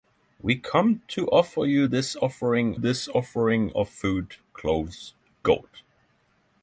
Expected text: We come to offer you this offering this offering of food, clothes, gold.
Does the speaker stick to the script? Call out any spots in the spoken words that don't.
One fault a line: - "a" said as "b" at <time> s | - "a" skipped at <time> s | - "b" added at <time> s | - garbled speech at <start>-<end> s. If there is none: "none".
none